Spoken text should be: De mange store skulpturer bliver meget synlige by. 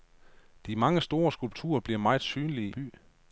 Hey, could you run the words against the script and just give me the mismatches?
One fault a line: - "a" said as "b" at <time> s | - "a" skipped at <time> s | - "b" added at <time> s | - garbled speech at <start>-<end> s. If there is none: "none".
none